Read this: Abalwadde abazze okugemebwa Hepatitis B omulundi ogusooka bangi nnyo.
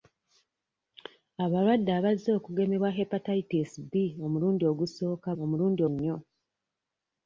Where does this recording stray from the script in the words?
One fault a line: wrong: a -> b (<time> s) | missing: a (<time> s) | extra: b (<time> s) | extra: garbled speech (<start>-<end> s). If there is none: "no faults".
wrong: bangi -> omulundi (5.4 s)